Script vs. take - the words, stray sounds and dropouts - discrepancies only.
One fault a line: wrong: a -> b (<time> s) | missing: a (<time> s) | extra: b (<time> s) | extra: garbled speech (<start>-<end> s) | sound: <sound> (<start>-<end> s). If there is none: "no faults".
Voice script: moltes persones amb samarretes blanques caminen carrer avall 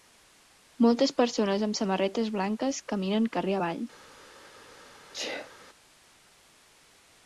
sound: sneeze (5.1-5.5 s)